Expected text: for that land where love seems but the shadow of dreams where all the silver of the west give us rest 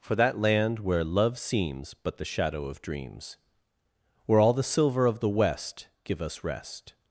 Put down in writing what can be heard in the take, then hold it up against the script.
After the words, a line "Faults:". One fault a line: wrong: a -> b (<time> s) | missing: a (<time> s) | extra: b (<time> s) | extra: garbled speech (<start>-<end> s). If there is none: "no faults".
for that land where love seems but the shadow of dreams where all the silver of the west give us rest
Faults:
no faults